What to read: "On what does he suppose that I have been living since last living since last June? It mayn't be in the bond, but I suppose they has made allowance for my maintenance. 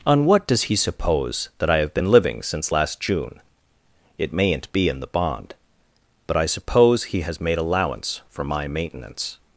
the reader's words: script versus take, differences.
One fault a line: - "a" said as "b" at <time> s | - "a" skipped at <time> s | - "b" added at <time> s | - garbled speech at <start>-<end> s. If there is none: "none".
- "living since last" skipped at 3.0 s
- "they" said as "he" at 7.0 s